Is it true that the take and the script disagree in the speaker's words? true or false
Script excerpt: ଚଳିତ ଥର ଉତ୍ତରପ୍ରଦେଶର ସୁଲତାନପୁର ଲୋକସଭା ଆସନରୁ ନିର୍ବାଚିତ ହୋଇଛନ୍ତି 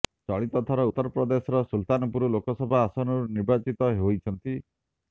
false